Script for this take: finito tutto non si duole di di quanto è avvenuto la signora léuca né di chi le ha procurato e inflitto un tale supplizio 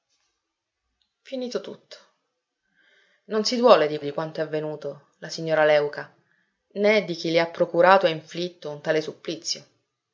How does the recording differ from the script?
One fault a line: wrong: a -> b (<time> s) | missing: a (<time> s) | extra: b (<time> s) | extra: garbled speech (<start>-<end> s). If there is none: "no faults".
no faults